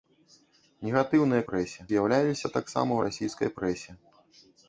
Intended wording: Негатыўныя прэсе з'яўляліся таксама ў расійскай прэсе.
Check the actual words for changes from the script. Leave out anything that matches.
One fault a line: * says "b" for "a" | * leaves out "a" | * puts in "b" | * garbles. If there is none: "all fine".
all fine